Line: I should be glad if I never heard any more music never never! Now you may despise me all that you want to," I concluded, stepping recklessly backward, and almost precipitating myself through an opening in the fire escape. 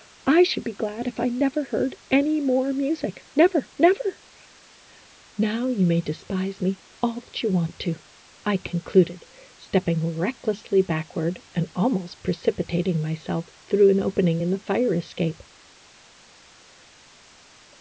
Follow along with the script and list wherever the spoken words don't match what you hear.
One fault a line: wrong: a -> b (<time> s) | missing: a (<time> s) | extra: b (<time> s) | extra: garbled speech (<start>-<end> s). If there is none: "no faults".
no faults